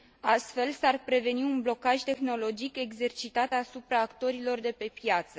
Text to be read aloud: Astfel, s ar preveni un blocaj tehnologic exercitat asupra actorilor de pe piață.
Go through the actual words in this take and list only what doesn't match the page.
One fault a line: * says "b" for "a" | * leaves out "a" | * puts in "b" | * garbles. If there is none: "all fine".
all fine